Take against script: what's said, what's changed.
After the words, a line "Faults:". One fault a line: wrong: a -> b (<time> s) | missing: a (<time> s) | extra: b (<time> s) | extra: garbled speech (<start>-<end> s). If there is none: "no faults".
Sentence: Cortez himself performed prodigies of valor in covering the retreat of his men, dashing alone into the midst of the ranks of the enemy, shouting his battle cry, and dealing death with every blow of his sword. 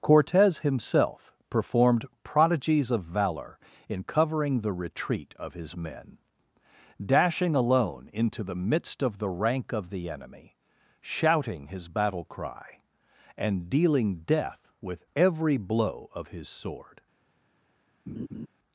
Cortez himself performed prodigies of valor in covering the retreat of his men, dashing alone into the midst of the rank of the enemy, shouting his battle cry, and dealing death with every blow of his sword.
Faults:
wrong: ranks -> rank (9.3 s)